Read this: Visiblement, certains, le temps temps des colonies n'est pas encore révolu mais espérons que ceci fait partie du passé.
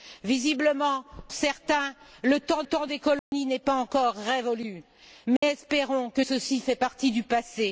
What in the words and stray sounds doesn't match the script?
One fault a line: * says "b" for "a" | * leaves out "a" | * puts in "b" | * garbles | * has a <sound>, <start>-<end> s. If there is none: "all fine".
* has a dropout, 3.2-3.3 s
* has a dropout, 5.4-5.4 s